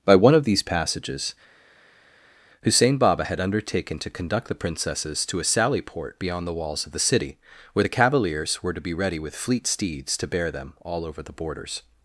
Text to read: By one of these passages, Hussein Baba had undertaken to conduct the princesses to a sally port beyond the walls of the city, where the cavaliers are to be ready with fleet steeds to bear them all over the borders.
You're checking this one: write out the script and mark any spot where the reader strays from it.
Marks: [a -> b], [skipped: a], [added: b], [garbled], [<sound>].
By one of these passages, Hussein Baba had undertaken to conduct the princesses to a sally port beyond the walls of the city, where the cavaliers [are -> were] to be ready with fleet steeds to bear them all over the borders.